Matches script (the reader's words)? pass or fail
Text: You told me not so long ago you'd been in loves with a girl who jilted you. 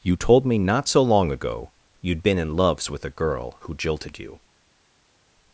pass